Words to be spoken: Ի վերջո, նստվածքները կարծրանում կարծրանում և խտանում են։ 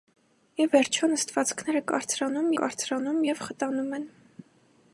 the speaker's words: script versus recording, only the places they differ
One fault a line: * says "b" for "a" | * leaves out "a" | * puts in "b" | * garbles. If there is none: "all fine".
all fine